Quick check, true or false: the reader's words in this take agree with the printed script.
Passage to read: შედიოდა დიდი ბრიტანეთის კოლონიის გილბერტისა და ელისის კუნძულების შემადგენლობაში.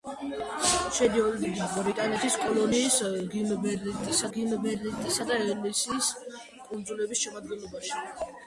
false